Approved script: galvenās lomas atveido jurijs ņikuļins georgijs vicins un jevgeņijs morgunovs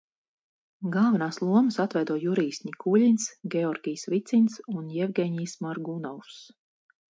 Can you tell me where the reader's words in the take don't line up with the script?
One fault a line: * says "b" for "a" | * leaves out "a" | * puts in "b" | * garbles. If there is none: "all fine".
all fine